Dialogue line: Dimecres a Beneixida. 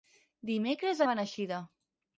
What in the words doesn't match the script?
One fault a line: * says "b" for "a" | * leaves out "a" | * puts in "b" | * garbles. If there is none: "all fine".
all fine